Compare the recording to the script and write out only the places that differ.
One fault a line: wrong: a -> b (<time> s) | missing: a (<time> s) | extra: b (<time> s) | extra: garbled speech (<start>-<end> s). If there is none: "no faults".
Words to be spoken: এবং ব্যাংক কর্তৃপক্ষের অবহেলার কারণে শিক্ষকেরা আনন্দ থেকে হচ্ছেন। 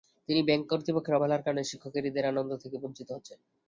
wrong: এবং -> কিন্তু (0.3 s)
extra: ঈদের (2.1 s)
extra: বঞ্চিত (2.8 s)